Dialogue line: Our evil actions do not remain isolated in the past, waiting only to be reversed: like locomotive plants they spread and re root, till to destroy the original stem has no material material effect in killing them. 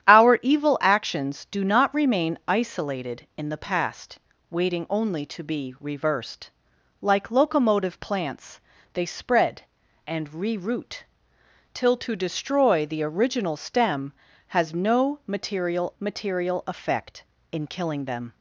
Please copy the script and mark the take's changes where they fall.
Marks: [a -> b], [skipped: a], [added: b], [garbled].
Our evil actions do not remain isolated in the past, waiting only to be reversed: like locomotive plants they spread and re root, till to destroy the original stem has no material material effect in killing them.